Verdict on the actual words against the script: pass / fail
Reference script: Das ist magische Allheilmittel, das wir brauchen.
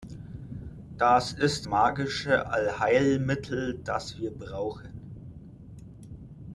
pass